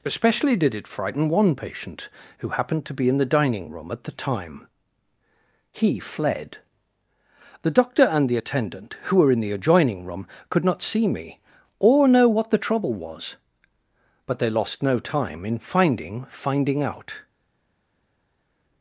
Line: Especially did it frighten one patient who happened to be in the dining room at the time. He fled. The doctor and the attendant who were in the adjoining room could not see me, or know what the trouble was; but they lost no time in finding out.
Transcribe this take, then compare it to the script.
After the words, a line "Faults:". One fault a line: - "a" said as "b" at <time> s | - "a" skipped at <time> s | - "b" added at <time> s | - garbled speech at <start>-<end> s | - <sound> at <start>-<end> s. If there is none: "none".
Especially did it frighten one patient who happened to be in the dining room at the time. He fled. The doctor and the attendant who were in the adjoining room could not see me, or know what the trouble was; but they lost no time in finding finding out.
Faults:
- "finding" added at 16.3 s